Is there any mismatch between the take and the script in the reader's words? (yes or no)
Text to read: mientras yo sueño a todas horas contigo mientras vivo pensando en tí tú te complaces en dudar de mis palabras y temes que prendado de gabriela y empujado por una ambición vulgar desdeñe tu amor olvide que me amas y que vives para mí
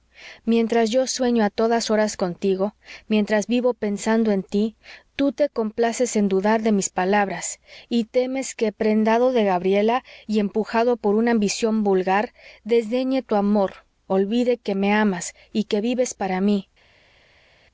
no